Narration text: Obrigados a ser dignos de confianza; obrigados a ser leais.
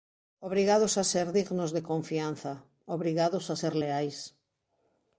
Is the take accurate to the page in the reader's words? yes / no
yes